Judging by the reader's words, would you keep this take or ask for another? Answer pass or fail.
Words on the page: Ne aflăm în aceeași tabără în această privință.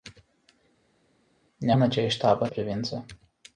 fail